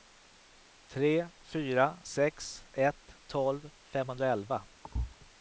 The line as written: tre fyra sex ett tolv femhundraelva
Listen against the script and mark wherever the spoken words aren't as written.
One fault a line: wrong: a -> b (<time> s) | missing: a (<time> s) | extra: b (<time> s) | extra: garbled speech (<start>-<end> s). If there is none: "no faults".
no faults